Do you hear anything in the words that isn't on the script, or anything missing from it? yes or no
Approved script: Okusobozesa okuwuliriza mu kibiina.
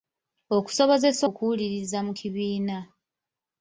no